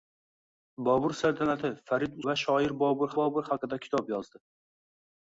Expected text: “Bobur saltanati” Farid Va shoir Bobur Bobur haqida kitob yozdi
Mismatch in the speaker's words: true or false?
false